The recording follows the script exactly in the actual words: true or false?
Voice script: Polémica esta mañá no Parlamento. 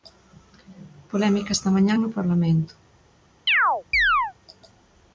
true